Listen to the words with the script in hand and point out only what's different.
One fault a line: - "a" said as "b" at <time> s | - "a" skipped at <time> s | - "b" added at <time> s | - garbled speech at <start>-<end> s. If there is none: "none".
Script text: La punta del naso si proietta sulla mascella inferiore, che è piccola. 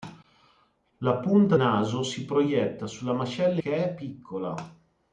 - "del" skipped at 1.6 s
- "inferiore" skipped at 3.6 s